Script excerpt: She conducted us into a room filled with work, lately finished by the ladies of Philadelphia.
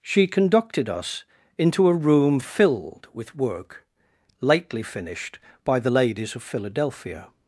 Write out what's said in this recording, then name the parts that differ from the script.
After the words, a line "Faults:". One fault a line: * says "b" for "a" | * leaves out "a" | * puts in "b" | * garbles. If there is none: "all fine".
She conducted us into a room filled with work, lately finished by the ladies of Philadelphia.
Faults:
all fine